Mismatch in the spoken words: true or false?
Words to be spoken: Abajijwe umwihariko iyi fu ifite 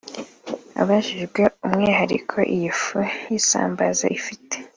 true